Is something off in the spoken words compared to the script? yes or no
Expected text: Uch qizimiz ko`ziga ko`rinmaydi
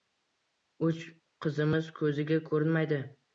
no